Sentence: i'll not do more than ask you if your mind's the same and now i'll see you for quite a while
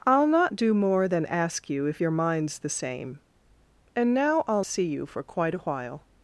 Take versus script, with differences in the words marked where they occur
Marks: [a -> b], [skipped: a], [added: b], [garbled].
i'll not do more than ask you if your mind's the same and now i'll see you for quite a while